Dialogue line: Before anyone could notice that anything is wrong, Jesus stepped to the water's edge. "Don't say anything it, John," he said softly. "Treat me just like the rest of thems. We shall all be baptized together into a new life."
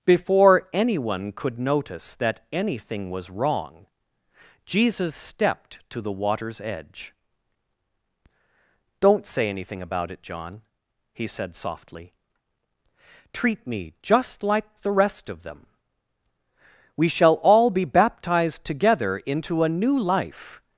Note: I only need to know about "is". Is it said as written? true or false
false